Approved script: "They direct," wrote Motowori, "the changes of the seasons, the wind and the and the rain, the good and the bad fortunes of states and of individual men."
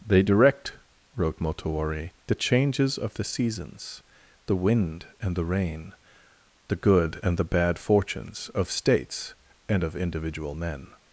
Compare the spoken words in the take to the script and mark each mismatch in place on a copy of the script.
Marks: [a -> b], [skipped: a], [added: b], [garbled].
"They direct," wrote Motowori, "the changes of the seasons, the wind and the [skipped: and the] rain, the good and the bad fortunes of states and of individual men."